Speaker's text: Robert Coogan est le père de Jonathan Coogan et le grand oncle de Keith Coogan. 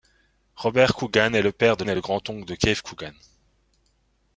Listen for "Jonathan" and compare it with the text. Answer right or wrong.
wrong